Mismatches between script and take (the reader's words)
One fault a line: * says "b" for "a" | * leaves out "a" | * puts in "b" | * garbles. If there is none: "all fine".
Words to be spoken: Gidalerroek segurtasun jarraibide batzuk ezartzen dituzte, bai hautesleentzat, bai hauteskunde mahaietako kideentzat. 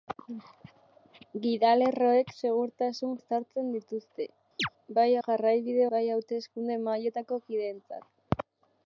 * leaves out "jarraibide batzuk"
* says "jarraibide" for "hautesleentzat"